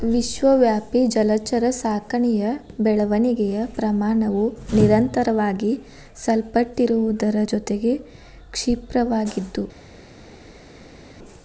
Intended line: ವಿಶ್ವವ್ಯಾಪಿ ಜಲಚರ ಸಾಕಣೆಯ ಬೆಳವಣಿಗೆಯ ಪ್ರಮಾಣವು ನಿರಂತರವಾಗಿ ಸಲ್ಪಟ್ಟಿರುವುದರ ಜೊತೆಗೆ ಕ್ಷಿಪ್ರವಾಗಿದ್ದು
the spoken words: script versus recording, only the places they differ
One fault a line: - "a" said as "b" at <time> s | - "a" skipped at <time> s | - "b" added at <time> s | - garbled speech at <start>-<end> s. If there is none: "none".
none